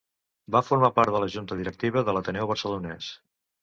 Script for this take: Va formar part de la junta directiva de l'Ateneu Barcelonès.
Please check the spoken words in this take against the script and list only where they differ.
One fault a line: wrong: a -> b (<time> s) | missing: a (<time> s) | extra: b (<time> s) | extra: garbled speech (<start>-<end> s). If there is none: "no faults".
no faults